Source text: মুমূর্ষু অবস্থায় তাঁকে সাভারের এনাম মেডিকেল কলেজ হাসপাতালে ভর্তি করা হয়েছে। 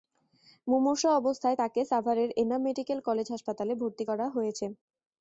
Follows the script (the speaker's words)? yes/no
yes